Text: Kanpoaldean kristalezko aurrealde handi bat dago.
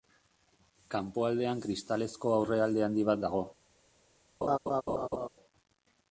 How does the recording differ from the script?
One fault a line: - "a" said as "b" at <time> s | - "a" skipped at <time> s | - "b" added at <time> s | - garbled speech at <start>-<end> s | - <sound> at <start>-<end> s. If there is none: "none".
- laugh at 4.4-5.3 s